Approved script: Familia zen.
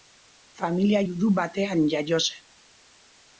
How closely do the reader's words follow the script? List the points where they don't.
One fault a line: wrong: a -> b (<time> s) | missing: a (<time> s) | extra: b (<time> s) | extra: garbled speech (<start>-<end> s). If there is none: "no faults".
extra: judu batean jaio (1.1 s)